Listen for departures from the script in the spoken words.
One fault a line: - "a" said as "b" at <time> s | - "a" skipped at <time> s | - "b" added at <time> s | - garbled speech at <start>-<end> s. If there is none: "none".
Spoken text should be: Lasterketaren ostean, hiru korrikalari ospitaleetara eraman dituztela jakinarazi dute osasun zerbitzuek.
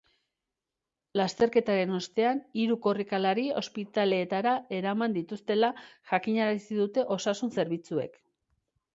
none